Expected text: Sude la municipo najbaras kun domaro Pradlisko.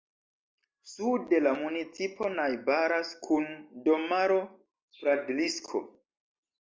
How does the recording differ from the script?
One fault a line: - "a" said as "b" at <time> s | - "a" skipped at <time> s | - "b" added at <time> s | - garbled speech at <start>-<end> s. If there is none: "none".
none